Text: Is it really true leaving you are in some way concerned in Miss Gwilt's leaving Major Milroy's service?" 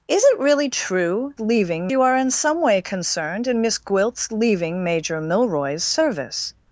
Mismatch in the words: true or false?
false